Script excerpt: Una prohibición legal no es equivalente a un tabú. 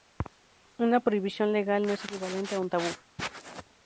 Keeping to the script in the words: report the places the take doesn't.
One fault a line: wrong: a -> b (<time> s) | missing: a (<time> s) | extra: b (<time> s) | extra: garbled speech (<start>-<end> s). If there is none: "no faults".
no faults